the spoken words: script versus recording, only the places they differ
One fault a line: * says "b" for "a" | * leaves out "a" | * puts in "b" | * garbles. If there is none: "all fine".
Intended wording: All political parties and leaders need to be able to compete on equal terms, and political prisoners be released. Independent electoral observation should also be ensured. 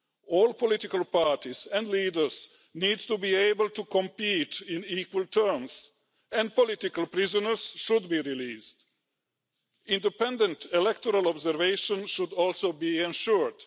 * puts in "should"